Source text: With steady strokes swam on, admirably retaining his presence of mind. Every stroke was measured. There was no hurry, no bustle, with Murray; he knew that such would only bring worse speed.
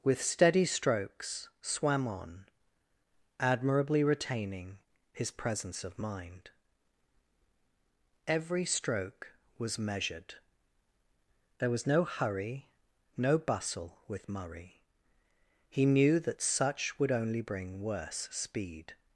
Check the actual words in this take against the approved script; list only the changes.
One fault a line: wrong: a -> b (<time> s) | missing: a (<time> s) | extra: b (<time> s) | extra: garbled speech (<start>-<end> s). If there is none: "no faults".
no faults